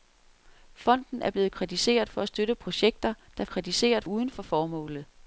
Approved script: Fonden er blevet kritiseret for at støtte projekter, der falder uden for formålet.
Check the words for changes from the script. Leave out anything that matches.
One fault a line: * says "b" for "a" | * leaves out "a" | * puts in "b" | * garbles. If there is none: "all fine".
* says "kritiseret" for "falder"